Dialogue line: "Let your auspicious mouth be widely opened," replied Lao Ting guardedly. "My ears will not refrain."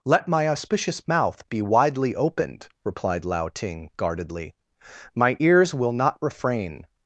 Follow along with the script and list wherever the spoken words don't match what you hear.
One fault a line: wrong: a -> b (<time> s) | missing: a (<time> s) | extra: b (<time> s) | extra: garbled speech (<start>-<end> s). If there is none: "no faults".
wrong: your -> my (0.3 s)